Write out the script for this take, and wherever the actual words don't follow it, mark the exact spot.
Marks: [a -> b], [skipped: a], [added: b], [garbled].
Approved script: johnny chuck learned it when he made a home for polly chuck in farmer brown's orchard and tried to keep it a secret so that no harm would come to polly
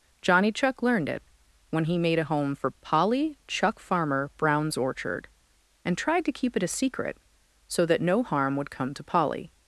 johnny chuck learned it when he made a home for polly chuck [skipped: in] farmer brown's orchard and tried to keep it a secret so that no harm would come to polly